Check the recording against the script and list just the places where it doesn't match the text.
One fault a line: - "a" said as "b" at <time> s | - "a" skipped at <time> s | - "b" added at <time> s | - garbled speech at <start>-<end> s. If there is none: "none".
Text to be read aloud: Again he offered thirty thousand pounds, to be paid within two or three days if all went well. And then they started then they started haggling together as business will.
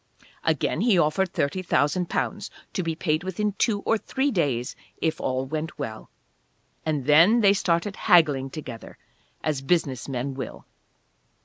- "then they started" skipped at 8.0 s
- "men" added at 10.1 s